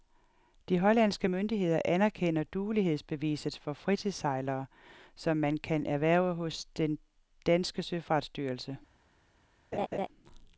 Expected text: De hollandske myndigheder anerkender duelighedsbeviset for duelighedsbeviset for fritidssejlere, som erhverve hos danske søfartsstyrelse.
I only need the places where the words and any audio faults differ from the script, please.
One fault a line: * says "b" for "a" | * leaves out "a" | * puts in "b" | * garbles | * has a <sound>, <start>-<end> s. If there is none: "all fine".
* says "fritidssejlere som man kan" for "duelighedsbeviset for fritidssejlere som"
* puts in "den"
* has a laugh, 9.7-10.1 s